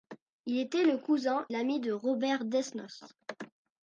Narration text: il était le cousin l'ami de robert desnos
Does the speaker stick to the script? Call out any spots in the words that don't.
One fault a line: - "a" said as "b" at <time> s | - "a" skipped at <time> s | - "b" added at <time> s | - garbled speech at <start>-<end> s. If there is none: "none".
none